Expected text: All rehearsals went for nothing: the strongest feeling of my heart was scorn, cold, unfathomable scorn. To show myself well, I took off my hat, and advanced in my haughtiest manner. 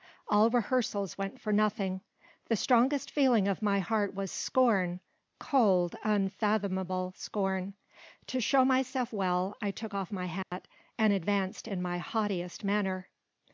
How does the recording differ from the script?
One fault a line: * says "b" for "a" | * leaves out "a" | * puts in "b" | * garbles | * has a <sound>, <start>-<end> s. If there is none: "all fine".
* has a dropout, 10.4-10.5 s